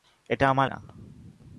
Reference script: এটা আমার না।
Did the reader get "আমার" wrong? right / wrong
right